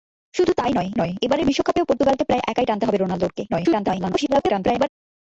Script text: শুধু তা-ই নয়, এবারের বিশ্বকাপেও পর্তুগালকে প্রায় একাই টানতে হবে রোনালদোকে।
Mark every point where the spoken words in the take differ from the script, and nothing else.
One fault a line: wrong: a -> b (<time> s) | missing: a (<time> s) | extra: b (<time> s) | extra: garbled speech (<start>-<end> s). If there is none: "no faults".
extra: নয় (1.0 s)
extra: garbled speech (3.5-4.9 s)